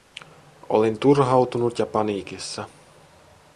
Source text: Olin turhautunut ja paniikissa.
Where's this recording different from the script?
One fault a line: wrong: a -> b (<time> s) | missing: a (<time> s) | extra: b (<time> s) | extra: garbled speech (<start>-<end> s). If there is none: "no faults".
no faults